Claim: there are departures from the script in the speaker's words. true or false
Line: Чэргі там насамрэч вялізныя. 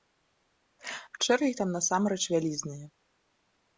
false